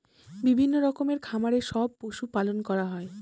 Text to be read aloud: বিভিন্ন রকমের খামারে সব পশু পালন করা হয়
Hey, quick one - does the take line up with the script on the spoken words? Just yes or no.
yes